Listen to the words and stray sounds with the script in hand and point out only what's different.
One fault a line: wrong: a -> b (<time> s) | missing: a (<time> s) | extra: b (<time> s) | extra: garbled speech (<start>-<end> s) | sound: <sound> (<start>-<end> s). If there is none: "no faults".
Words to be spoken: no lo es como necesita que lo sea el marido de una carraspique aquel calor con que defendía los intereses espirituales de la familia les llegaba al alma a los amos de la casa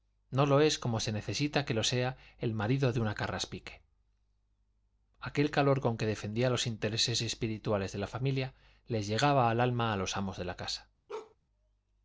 extra: se (1.0 s)
sound: bark (11.1-11.4 s)